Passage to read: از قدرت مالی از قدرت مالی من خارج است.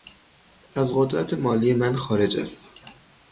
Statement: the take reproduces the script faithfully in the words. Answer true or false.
false